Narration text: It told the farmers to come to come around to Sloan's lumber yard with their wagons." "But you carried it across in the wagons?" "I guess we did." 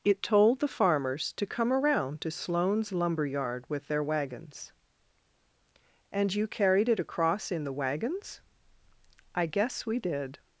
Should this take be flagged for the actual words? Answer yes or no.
yes